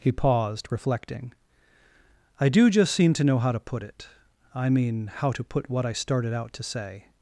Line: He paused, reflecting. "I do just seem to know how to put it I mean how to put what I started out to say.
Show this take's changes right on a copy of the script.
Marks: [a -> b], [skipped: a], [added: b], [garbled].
He paused, reflecting. "I do just seem to know how to put it I mean how to put what I started out to say.